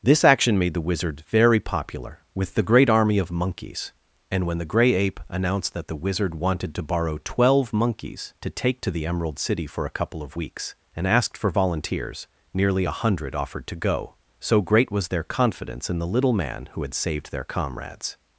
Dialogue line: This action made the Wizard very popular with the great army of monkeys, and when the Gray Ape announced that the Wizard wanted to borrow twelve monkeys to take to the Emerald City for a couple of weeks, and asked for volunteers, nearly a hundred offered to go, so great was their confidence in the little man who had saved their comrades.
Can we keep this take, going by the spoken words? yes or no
yes